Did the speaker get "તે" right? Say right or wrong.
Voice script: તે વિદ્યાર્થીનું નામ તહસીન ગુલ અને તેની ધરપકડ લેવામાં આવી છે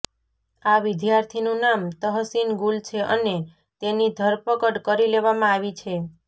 wrong